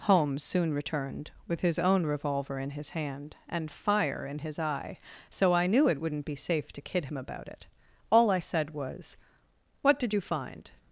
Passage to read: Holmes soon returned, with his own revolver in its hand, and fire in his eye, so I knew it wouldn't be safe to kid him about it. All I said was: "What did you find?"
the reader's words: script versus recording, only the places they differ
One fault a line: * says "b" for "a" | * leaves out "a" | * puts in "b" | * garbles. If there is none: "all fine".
* says "his" for "its"